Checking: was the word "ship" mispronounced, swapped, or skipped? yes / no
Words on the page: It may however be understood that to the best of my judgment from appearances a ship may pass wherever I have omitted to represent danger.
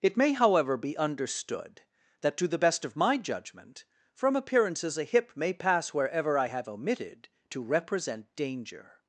yes